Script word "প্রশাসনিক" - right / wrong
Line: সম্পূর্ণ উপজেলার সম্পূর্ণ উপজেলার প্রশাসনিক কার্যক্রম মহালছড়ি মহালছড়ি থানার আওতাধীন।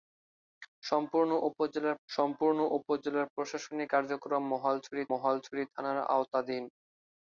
right